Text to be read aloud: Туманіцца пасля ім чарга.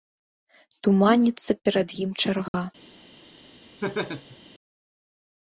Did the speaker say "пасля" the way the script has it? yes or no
no